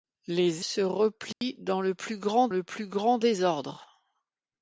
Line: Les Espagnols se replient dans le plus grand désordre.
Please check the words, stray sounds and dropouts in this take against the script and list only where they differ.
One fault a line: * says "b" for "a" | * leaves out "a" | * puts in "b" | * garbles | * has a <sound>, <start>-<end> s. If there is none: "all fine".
* leaves out "Espagnols"
* has a dropout, 1.3-1.4 s
* puts in "le plus grand"